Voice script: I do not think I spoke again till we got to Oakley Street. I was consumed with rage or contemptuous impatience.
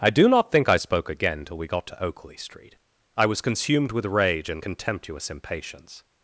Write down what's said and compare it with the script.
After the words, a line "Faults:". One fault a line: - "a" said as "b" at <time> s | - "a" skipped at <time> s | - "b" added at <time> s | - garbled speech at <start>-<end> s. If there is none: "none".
I do not think I spoke again till we got to Oakley Street. I was consumed with rage and contemptuous impatience.
Faults:
- "or" said as "and" at 4.5 s